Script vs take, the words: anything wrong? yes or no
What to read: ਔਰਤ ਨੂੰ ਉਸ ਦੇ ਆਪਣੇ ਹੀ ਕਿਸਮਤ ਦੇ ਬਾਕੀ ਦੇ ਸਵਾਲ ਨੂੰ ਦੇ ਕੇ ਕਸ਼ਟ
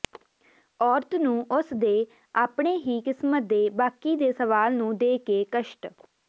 no